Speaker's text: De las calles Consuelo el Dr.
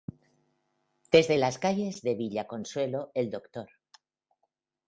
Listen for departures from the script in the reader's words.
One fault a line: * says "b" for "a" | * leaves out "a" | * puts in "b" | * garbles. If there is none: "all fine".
* says "Desde" for "De"
* puts in "de Villa"